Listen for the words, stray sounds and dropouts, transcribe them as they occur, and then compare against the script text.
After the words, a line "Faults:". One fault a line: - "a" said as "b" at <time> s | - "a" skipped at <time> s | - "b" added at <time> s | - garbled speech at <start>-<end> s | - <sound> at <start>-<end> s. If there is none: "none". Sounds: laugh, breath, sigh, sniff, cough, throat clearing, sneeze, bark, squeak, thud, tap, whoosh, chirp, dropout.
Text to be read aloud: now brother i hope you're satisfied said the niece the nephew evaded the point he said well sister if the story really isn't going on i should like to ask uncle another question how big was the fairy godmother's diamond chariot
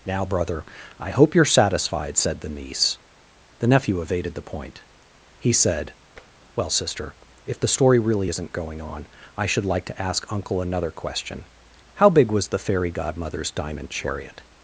now brother i hope you're satisfied said the niece the nephew evaded the point he said well sister if the story really isn't going on i should like to ask uncle another question how big was the fairy godmother's diamond chariot
Faults:
- tap at 6.2-6.3 s